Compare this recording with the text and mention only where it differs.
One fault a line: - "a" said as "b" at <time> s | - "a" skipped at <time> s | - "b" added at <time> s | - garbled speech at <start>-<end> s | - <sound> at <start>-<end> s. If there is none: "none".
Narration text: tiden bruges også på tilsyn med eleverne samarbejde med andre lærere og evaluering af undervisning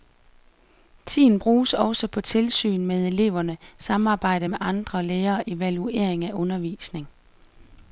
none